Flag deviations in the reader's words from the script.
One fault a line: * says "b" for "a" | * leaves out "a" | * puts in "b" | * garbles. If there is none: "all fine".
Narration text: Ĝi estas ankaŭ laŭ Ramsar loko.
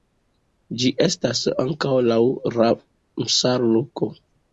all fine